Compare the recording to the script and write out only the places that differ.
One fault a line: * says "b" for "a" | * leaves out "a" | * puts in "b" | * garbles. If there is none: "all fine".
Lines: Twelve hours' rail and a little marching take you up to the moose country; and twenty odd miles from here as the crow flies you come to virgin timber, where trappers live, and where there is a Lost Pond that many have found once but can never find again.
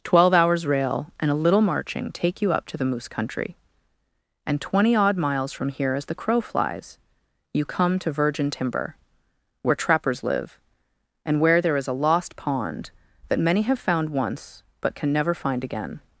all fine